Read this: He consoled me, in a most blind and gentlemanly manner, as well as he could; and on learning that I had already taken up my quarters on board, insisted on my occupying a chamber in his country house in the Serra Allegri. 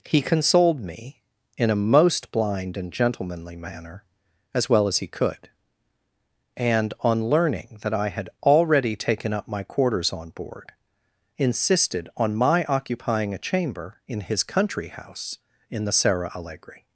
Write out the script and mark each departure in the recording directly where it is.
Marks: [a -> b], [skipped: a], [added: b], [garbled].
He consoled me, in a most blind and gentlemanly manner, as well as he could; and on learning that I had already taken up my quarters on board, insisted on my occupying a chamber in his country house in the Serra Allegri.